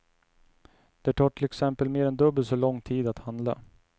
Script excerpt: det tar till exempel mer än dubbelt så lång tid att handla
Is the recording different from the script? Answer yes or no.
no